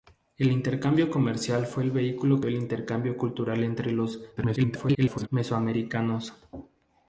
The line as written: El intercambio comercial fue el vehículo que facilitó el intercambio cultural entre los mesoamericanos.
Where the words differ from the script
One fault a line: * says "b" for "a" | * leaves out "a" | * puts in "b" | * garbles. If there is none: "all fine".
* leaves out "que facilitó"
* garbles